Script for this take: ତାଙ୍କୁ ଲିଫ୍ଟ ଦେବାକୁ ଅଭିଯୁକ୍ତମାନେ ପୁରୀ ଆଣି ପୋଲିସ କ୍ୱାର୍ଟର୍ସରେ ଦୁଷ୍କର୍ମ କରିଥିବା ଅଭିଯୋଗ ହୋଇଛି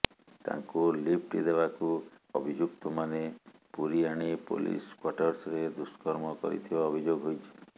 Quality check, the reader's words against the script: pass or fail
pass